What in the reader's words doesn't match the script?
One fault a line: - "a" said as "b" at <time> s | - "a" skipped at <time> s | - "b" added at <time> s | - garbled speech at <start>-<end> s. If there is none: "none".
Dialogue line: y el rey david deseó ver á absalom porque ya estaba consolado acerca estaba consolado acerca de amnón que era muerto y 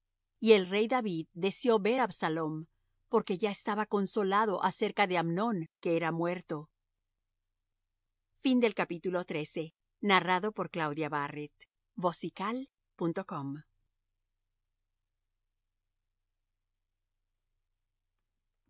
- "estaba consolado acerca" skipped at 5.1 s